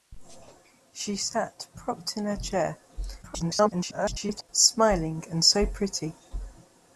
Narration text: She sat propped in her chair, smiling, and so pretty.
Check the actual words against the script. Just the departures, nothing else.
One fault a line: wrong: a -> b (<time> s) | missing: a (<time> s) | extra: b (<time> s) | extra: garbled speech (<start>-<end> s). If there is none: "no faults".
extra: garbled speech (3.2-4.5 s)